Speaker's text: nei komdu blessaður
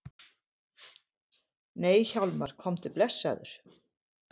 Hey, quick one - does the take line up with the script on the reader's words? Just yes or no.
no